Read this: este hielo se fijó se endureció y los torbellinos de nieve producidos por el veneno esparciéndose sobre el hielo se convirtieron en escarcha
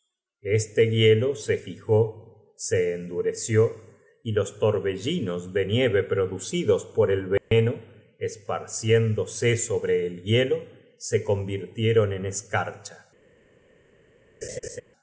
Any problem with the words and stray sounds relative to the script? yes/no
yes